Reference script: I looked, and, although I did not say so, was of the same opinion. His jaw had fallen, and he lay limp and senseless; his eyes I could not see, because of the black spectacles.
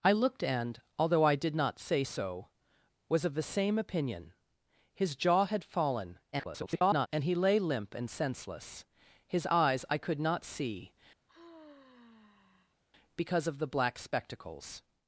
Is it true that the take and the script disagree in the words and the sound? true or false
true